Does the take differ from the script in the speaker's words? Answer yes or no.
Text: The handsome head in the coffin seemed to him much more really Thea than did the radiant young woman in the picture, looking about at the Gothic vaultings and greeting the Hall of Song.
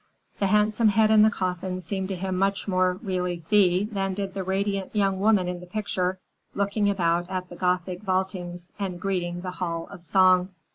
no